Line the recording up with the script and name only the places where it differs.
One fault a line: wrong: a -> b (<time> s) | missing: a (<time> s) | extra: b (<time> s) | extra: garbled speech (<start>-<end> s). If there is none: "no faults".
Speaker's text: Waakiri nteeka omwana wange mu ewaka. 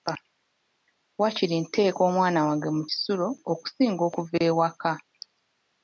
extra: kisulo okusinga okuva (2.9 s)